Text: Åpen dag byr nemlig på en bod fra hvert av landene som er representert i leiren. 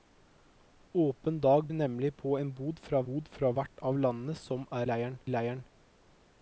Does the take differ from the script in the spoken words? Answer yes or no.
yes